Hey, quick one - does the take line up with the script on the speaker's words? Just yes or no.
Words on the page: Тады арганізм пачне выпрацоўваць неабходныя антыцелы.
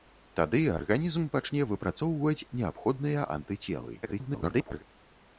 no